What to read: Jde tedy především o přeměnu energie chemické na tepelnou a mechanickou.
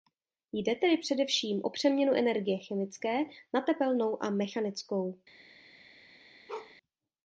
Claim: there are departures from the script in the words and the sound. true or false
true